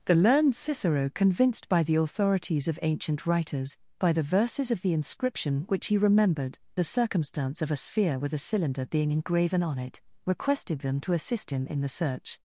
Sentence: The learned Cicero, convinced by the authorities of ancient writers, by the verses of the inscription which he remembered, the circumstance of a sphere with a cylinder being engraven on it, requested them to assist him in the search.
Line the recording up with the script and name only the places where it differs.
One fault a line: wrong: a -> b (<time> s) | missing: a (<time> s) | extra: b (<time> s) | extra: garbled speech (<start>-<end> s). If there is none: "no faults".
no faults